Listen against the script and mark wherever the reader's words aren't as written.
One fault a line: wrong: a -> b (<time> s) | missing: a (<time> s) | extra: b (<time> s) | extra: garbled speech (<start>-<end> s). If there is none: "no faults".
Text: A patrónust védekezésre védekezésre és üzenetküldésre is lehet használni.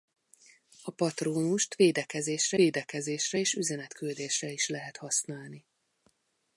no faults